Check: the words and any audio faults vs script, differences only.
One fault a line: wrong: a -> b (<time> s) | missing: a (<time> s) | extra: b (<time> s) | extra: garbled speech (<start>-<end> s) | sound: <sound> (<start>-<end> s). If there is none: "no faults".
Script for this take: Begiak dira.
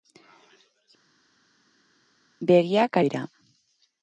no faults